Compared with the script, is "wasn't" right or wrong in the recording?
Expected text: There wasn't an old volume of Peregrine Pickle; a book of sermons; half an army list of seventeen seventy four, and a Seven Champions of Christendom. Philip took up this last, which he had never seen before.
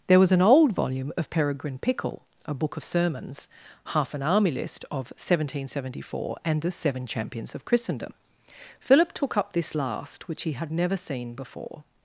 wrong